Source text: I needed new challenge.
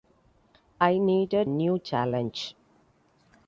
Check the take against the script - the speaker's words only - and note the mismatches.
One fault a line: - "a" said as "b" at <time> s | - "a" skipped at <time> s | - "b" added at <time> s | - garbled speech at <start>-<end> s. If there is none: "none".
none